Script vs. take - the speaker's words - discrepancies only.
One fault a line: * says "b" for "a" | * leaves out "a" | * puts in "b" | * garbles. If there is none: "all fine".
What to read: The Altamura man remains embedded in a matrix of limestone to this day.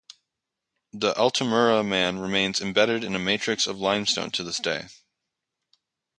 all fine